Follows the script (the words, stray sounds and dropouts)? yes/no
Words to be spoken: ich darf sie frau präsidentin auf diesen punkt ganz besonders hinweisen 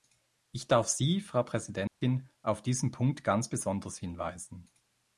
no